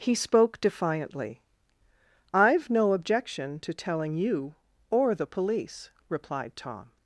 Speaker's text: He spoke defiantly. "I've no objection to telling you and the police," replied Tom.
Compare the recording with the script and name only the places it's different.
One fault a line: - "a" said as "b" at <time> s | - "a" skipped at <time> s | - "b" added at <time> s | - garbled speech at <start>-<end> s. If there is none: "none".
- "and" said as "or" at 4.9 s